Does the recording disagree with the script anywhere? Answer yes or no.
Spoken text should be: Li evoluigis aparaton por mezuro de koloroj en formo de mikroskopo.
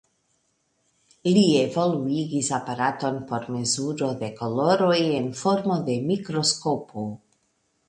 no